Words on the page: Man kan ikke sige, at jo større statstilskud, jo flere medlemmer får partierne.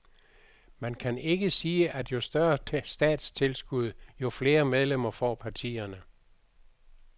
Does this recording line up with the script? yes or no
yes